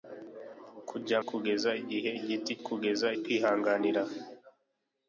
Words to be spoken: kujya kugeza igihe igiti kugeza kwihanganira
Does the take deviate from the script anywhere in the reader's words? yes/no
no